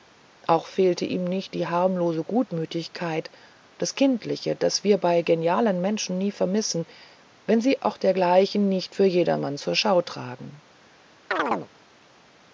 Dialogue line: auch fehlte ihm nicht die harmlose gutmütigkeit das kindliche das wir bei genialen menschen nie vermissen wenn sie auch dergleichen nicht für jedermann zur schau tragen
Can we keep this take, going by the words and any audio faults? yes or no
no